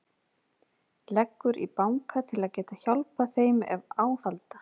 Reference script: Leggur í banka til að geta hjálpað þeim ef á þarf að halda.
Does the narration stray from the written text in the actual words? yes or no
yes